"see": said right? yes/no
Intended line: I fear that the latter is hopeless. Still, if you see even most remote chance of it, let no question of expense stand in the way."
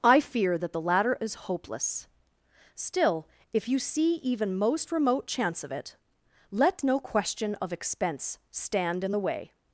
yes